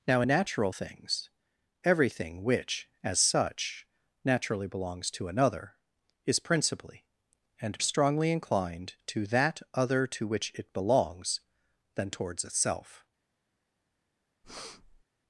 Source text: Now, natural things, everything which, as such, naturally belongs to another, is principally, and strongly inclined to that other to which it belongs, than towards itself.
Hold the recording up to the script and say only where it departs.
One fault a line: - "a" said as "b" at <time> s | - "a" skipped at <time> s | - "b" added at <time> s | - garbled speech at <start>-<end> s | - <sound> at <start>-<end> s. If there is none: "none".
- breath at 14.4-15.0 s